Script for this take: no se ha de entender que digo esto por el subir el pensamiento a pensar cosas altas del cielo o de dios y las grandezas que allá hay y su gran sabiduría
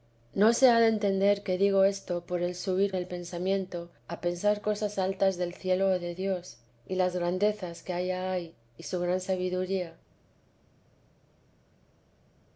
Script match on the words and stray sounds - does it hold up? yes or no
yes